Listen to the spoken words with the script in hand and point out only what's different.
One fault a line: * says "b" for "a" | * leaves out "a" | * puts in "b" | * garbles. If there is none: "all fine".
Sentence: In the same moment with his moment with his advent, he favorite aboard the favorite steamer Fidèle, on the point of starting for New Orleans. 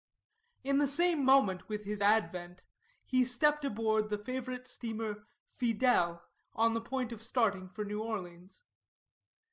* leaves out "moment with his"
* says "stepped" for "favorite"